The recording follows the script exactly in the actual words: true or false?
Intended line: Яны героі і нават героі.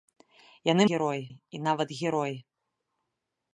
true